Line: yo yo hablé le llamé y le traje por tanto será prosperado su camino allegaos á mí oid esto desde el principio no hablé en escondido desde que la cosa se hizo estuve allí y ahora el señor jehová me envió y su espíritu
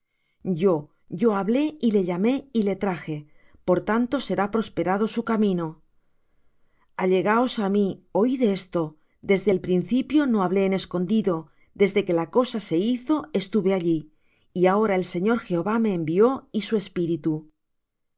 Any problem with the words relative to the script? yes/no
yes